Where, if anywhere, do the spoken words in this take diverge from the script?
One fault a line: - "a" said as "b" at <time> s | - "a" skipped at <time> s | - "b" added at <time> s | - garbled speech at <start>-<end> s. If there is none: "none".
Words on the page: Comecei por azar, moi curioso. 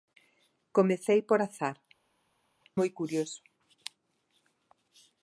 none